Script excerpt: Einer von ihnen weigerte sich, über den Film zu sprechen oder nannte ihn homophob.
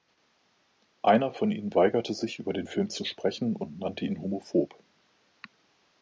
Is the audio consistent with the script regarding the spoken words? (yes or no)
no